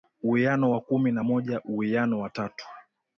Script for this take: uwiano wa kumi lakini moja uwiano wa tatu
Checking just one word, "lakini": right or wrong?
wrong